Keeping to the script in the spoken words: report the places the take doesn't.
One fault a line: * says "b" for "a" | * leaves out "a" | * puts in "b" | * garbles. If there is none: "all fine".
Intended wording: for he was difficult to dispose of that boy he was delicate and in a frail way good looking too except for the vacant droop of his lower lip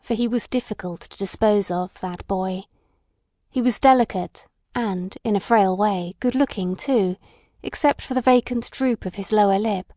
all fine